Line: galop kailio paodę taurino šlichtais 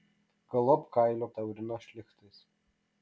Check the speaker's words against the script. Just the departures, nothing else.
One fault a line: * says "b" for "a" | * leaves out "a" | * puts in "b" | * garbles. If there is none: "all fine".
* leaves out "paodę"